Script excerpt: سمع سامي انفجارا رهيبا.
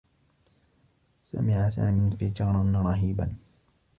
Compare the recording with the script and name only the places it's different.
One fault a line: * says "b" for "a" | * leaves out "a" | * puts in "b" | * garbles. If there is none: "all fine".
all fine